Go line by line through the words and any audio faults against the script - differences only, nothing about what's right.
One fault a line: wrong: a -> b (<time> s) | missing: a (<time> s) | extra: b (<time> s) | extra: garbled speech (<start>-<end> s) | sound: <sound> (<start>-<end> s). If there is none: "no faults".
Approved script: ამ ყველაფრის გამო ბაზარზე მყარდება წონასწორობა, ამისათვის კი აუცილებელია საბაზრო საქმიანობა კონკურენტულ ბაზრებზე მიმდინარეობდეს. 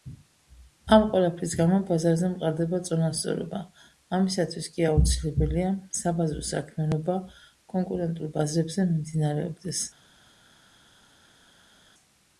no faults